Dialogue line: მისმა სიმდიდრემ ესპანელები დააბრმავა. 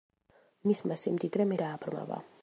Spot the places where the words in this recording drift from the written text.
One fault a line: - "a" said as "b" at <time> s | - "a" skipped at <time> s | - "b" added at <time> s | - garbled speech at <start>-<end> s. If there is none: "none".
- "ესპანელები" skipped at 1.5 s